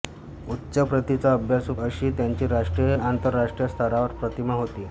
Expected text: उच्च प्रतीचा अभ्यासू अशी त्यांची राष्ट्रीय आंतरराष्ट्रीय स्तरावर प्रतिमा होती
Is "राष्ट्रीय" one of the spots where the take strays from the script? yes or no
no